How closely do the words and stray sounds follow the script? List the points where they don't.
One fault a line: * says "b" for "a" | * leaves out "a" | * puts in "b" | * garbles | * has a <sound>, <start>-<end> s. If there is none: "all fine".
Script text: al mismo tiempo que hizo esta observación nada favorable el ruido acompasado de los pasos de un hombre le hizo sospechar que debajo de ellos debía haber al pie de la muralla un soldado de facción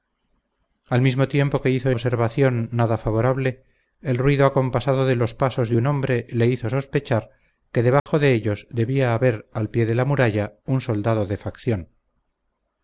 * leaves out "esta"
* has a dropout, 8.0-8.1 s